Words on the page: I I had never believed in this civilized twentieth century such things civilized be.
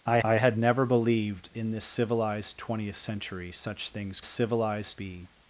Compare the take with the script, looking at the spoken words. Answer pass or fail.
pass